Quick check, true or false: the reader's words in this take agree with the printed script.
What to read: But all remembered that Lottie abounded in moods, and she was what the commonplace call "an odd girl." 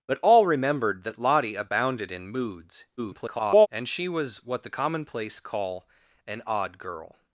false